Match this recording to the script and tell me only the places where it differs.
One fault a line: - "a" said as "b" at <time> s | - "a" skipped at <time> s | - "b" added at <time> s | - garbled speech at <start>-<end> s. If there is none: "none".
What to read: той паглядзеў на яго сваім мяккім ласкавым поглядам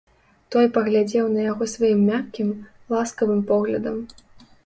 none